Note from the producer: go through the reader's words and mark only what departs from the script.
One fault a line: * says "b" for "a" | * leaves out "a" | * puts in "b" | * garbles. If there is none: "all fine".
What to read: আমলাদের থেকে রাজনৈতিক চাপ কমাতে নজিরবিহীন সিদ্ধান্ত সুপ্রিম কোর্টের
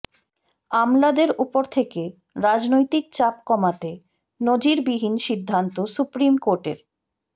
* puts in "উপর"